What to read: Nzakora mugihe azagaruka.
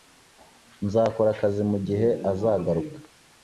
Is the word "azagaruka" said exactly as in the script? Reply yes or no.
yes